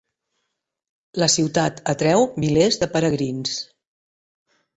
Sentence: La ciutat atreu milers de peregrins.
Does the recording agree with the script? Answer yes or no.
yes